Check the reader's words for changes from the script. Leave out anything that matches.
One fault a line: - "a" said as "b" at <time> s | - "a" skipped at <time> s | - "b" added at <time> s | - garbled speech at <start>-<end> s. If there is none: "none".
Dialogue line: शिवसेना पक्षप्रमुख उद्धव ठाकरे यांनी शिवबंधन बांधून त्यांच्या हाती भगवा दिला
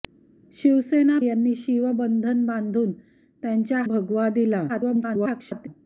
- "पक्षप्रमुख उद्धव ठाकरे" skipped at 1.2 s
- "हाती" skipped at 3.8 s
- garbled speech at 4.7-5.7 s